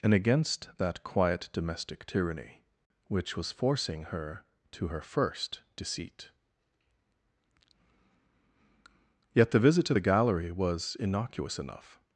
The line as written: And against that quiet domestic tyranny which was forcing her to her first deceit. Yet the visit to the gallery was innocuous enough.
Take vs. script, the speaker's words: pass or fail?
pass